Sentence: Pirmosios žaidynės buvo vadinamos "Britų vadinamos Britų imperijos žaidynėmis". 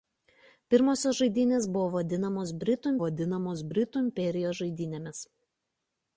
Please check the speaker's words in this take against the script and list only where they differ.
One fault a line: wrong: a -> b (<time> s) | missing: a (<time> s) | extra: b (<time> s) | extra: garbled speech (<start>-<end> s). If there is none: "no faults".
no faults